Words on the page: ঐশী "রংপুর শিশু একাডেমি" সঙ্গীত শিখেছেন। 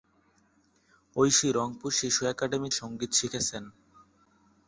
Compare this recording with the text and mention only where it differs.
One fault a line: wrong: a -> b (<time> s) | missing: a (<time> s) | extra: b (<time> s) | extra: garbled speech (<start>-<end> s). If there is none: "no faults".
no faults